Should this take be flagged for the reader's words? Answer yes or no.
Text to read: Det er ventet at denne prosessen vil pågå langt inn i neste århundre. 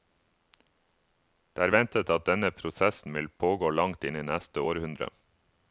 no